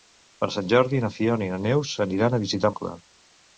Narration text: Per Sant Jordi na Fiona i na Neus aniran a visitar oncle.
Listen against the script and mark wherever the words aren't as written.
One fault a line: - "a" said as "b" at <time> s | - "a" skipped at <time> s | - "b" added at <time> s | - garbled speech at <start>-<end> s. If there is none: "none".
none